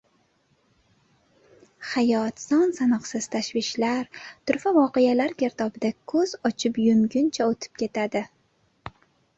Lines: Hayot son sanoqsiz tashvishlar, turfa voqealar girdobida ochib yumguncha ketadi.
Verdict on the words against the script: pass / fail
fail